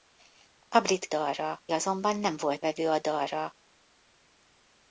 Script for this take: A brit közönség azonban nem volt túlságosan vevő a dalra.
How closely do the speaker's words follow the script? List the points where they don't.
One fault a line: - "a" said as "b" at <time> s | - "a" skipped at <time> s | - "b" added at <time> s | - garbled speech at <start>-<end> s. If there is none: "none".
- "közönség" said as "dalra" at 1.1 s
- "túlságosan" skipped at 2.6 s